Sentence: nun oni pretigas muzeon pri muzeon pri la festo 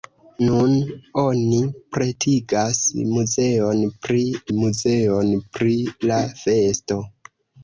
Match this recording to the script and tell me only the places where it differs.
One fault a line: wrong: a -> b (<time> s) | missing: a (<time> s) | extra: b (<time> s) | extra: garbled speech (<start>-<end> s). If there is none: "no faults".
no faults